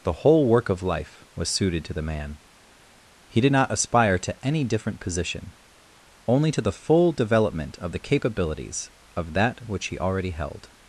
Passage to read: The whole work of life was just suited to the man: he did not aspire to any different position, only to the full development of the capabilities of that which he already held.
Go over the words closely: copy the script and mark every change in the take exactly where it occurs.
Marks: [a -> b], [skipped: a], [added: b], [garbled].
The whole work of life was [skipped: just] suited to the man: he did not aspire to any different position, only to the full development of the capabilities of that which he already held.